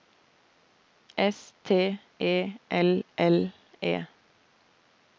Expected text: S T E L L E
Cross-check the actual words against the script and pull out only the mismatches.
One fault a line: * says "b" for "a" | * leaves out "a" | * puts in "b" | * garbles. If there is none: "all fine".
all fine